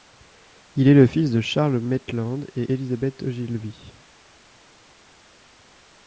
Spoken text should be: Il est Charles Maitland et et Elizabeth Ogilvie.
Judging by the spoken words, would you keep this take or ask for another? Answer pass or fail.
fail